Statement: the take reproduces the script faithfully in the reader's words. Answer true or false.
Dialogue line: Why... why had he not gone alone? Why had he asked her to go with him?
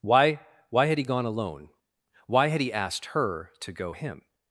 false